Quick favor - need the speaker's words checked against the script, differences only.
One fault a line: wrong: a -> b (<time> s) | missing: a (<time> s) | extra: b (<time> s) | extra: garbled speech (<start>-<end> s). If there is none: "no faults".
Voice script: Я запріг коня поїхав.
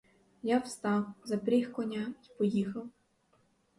extra: встав (0.6 s)
extra: й (2.2 s)